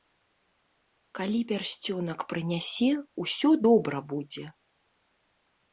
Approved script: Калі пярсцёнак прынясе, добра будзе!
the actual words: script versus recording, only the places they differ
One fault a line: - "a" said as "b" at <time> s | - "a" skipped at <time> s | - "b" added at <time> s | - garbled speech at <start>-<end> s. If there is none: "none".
- "усё" added at 3.2 s